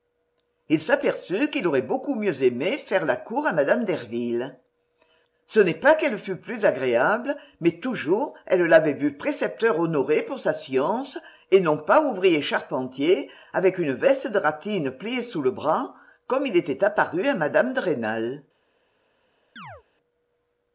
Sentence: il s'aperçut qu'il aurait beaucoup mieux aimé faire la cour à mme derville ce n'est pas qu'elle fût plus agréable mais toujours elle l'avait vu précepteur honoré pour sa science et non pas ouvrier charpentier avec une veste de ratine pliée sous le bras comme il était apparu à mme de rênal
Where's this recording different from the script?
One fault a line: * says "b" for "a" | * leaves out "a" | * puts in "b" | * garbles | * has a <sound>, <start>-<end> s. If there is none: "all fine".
* has a chirp, 19.6-19.8 s